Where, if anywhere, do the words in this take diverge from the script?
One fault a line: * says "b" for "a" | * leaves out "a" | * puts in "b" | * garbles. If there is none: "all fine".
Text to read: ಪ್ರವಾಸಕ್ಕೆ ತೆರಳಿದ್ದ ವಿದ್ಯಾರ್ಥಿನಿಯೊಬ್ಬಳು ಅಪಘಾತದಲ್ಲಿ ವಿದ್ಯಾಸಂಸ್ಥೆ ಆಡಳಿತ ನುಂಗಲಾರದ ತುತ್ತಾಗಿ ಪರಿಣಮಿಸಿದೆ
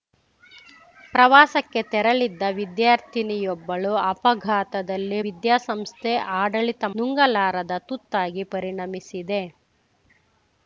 all fine